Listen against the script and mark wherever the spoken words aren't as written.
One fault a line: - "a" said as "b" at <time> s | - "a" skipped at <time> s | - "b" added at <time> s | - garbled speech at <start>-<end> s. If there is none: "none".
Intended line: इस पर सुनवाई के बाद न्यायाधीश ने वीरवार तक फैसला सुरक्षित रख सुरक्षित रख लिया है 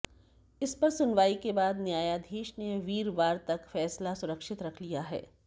- "सुरक्षित रख" skipped at 4.8 s